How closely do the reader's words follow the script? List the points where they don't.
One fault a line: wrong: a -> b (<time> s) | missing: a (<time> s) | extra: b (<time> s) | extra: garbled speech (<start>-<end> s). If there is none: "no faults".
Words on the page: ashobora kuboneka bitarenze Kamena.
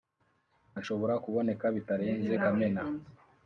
no faults